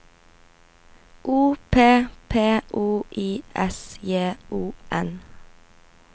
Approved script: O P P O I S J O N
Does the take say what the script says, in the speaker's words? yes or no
yes